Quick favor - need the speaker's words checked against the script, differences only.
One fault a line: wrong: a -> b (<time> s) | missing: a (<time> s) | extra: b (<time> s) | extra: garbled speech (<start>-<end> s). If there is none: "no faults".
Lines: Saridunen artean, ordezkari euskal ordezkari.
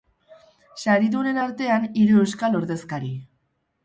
wrong: ordezkari -> hiru (2.0 s)